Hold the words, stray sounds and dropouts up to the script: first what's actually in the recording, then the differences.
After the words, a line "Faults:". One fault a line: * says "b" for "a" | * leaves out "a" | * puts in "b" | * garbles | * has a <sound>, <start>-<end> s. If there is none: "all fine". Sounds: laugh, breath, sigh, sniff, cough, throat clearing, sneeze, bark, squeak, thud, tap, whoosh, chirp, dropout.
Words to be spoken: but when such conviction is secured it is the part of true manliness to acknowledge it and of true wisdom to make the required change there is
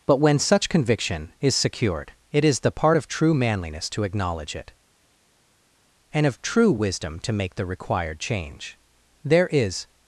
but when such conviction is secured it is the part of true manliness to acknowledge it and of true wisdom to make the required change there is
Faults:
all fine